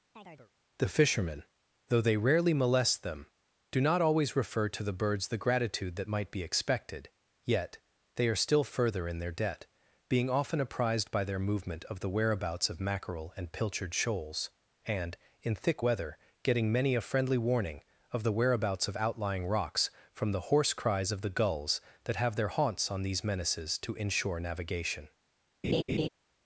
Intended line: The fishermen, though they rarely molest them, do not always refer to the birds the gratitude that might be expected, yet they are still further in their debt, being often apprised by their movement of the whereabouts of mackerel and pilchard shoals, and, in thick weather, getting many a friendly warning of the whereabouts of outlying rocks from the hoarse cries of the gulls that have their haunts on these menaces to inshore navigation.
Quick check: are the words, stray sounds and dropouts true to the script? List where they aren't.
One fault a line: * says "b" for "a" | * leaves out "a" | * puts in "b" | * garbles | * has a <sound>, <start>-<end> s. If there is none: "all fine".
* has a chirp, 0.1-0.5 s
* has a laugh, 25.6-26.1 s